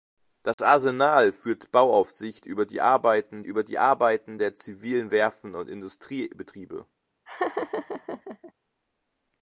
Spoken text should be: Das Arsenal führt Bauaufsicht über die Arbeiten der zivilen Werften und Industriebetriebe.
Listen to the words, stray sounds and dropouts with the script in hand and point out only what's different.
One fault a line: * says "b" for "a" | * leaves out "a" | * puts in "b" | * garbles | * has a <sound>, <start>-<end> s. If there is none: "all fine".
* has a dropout, 0.5-0.6 s
* puts in "über die Arbeiten"
* has a laugh, 7.3-8.5 s